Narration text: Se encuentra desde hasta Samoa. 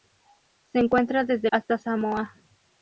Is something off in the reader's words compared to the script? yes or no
no